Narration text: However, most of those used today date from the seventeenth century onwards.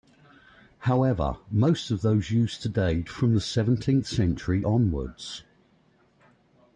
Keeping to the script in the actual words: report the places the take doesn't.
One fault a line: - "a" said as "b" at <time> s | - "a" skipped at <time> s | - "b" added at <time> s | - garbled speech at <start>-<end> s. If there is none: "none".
- "date" skipped at 3.0 s